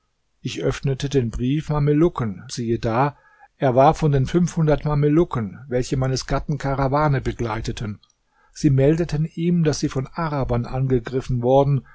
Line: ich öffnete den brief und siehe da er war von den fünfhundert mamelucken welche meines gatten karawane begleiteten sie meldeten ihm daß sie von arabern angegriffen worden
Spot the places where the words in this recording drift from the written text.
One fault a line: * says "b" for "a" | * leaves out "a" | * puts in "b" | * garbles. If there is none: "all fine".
* says "mamelucken" for "und"